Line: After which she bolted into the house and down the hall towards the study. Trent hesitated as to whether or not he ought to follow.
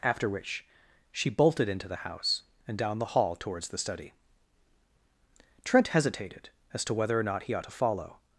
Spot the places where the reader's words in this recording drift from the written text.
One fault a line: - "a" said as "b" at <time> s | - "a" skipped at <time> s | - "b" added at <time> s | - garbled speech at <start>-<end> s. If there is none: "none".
none